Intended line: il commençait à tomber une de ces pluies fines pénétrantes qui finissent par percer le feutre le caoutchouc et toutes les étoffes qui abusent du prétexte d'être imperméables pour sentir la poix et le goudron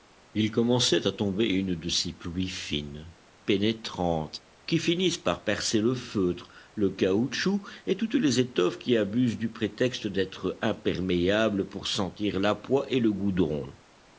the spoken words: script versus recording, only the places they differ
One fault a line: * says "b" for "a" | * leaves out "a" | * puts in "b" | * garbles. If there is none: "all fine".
all fine